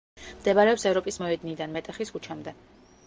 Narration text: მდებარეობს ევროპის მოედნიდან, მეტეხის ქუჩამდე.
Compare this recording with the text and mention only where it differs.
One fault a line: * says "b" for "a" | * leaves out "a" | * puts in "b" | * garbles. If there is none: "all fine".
all fine